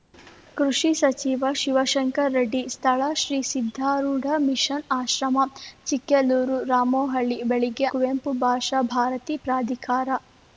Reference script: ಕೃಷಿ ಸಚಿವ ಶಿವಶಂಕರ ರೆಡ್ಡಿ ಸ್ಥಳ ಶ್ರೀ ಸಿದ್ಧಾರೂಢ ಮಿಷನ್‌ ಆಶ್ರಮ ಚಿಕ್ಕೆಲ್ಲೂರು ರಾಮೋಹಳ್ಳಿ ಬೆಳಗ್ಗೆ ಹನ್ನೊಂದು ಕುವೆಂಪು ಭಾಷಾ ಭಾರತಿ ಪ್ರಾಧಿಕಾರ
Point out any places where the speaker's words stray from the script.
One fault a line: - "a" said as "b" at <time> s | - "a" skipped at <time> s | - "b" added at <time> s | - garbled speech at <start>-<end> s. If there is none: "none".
- "ಹನ್ನೊಂದು" skipped at 7.9 s